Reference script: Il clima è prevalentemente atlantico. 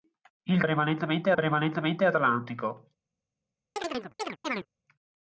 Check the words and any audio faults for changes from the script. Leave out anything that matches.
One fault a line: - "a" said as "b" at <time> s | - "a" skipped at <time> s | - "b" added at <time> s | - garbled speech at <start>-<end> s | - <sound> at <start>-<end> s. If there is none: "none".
- "clima" said as "prevalentemente" at 0.6 s
- chirp at 3.8-4.7 s